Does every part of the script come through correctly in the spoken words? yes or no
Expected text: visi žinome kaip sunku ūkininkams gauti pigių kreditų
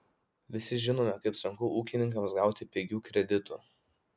yes